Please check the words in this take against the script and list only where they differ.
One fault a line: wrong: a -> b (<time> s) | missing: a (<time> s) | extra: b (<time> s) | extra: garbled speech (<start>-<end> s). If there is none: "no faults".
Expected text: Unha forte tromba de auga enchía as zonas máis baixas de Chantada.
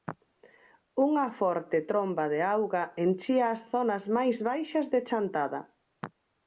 no faults